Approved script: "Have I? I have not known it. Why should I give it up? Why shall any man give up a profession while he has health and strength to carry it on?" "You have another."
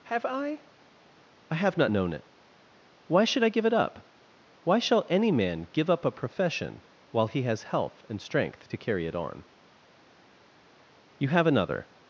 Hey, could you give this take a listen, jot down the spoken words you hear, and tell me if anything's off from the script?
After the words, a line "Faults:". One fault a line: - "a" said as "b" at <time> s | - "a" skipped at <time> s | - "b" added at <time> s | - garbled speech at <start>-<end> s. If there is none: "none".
"Have I? I have not known it. Why should I give it up? Why shall any man give up a profession while he has health and strength to carry it on?" "You have another."
Faults:
none